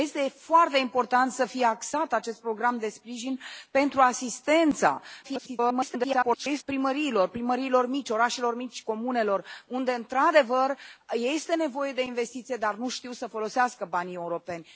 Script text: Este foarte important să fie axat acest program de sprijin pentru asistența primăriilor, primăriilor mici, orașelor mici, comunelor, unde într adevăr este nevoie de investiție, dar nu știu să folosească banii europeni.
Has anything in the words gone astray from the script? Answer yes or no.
yes